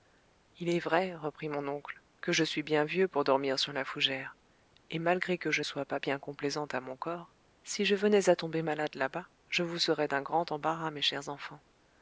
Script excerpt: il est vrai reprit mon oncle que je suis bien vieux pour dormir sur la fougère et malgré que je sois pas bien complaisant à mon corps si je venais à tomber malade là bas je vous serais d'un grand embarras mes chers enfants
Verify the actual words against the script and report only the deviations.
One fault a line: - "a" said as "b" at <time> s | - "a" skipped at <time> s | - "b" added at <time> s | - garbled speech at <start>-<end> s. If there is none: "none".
none